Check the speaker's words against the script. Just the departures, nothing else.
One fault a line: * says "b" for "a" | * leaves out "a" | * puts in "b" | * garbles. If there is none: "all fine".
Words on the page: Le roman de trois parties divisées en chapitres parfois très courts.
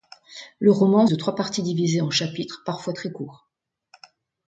all fine